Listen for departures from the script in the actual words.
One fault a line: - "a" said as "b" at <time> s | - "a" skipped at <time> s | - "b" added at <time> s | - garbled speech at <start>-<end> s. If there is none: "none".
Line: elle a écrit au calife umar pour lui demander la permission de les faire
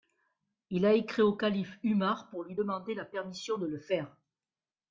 - "elle" said as "il" at 0.7 s
- "les" said as "le" at 3.7 s